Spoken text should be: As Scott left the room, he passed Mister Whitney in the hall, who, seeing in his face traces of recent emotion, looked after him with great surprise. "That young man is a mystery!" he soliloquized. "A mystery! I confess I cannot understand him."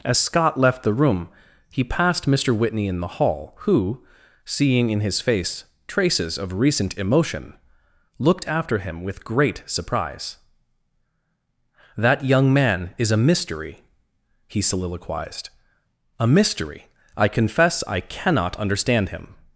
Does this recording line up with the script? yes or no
yes